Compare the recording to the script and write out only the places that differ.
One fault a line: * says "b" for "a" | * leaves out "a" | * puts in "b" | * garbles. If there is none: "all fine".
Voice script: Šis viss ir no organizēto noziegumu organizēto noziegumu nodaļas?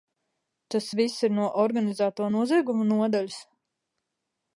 * says "Tas" for "Šis"
* leaves out "organizēto noziegumu"